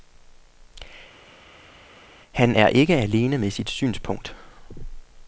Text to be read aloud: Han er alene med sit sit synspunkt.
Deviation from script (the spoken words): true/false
true